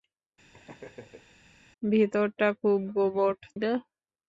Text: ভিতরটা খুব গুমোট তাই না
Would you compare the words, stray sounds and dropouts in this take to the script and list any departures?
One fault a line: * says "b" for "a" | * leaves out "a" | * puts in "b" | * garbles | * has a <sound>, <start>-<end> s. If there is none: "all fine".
* has a laugh, 0.5-1.4 s
* leaves out "তাই"